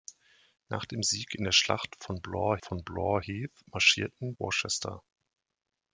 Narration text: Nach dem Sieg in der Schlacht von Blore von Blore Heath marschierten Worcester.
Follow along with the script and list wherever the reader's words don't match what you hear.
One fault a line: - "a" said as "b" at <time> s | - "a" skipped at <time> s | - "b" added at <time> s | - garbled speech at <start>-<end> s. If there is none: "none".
none